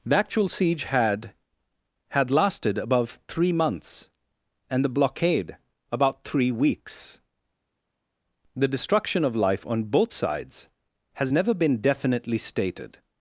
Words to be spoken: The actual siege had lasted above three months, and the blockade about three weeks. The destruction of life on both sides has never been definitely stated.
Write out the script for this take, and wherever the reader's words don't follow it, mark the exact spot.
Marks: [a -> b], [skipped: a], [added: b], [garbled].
The actual siege had [added: had] lasted above three months, and the blockade about three weeks. The destruction of life on both sides has never been definitely stated.